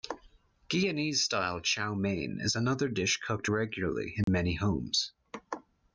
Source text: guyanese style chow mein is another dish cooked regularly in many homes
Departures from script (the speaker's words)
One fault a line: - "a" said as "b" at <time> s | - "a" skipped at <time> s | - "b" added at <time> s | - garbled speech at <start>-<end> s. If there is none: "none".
none